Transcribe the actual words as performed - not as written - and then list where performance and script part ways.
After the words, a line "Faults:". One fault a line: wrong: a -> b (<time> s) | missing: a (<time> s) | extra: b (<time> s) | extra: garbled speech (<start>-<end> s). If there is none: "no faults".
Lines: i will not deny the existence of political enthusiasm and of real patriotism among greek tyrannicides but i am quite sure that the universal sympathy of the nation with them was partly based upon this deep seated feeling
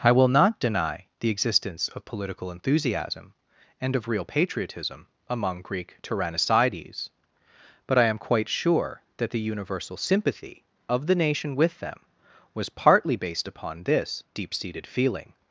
i will not deny the existence of political enthusiasm and of real patriotism among greek tyrannicides but i am quite sure that the universal sympathy of the nation with them was partly based upon this deep seated feeling
Faults:
no faults